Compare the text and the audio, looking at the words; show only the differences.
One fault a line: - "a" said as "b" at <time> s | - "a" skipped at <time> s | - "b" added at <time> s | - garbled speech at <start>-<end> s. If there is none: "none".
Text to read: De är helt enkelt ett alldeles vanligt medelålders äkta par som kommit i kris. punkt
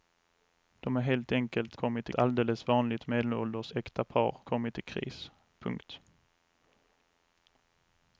- "ett" said as "kommit" at 1.7 s
- "som" skipped at 4.4 s